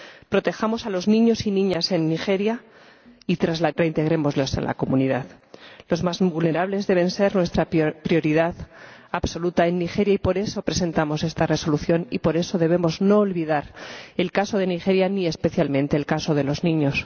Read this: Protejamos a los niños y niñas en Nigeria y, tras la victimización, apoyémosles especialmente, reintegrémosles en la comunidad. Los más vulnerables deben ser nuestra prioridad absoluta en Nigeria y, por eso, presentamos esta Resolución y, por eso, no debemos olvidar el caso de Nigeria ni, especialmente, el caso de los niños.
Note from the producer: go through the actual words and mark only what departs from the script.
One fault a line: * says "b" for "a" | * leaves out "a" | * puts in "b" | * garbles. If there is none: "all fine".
* leaves out "victimización apoyémosles especialmente"